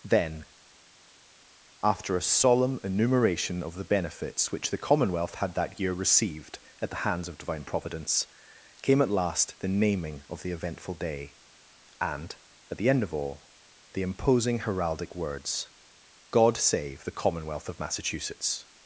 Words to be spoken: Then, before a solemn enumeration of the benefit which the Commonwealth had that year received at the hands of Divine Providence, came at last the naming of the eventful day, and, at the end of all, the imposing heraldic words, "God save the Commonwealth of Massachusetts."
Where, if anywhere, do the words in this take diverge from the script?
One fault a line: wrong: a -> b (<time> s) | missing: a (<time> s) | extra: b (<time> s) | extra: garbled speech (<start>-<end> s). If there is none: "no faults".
wrong: before -> after (1.8 s)
wrong: benefit -> benefits (3.8 s)